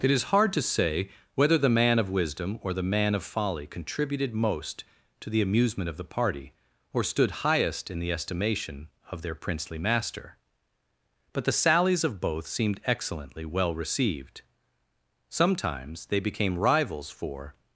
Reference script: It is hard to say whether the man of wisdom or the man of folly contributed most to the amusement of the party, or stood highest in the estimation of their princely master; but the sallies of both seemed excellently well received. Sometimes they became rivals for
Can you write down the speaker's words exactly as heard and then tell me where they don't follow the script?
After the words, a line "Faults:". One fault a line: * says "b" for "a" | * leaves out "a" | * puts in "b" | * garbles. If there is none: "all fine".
It is hard to say whether the man of wisdom or the man of folly contributed most to the amusement of the party, or stood highest in the estimation of their princely master; but the sallies of both seemed excellently well received. Sometimes they became rivals for
Faults:
all fine